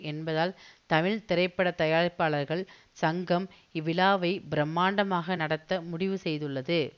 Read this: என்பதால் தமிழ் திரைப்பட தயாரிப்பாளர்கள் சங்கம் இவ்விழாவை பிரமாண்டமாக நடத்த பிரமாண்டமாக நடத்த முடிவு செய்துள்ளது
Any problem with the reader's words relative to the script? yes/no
yes